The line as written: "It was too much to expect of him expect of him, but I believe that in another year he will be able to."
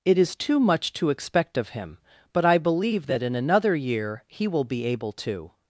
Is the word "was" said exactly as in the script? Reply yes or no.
no